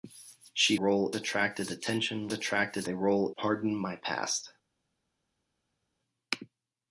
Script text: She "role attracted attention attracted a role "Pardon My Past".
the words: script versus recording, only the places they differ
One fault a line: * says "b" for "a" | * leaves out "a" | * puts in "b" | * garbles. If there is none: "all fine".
all fine